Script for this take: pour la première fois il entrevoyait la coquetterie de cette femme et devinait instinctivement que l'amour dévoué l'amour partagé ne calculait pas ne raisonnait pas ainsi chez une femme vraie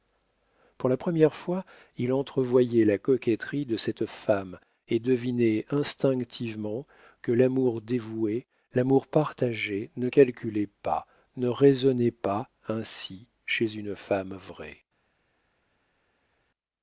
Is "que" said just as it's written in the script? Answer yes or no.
yes